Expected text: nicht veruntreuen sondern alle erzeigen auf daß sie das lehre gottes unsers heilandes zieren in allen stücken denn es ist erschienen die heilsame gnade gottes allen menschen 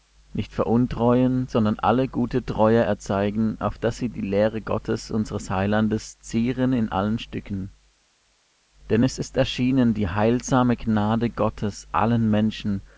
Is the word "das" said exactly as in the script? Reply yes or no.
no